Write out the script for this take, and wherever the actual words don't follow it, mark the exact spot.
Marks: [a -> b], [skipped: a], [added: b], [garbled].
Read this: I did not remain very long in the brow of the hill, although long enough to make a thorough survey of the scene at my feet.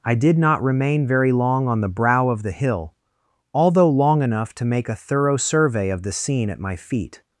I did not remain very long [in -> on] the brow of the hill, although long enough to make a thorough survey of the scene at my feet.